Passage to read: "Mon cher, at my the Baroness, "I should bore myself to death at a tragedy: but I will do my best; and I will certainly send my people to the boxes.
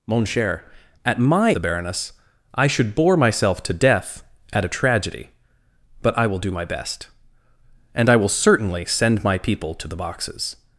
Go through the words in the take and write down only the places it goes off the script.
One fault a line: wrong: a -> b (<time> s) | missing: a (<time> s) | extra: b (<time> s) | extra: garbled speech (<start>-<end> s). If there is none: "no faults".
no faults